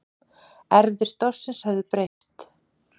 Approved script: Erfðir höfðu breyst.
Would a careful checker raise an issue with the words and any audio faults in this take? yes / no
yes